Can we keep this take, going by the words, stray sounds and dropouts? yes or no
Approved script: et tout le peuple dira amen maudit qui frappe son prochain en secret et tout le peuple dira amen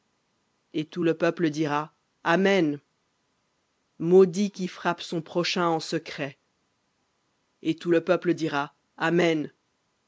yes